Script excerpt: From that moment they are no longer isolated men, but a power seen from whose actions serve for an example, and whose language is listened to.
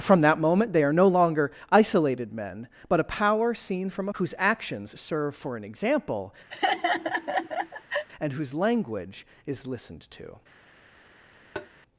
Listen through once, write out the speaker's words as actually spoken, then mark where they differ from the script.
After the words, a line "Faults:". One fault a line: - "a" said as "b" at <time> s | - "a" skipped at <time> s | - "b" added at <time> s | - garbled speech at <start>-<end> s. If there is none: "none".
From that moment they are no longer isolated men, but a power seen from whose actions serve for an example, and whose language is listened to.
Faults:
none